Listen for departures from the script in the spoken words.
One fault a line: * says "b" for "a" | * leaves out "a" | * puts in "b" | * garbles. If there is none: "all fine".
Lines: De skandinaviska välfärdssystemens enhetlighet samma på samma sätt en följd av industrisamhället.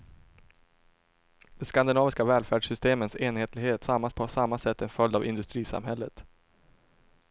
all fine